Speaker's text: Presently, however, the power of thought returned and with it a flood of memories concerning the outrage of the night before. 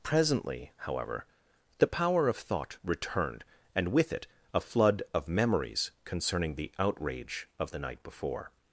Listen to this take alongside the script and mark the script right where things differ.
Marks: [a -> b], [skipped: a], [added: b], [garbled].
Presently, however, the power of thought returned and with it a flood of memories concerning the outrage of the night before.